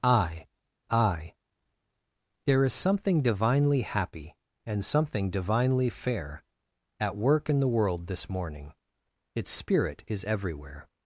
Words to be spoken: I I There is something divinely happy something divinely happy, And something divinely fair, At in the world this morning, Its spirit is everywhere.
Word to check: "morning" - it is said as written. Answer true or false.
true